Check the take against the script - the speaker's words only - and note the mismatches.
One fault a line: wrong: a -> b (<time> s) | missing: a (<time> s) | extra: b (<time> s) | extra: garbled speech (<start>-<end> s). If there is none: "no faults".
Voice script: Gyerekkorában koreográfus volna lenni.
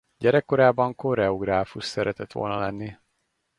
extra: szeretett (1.9 s)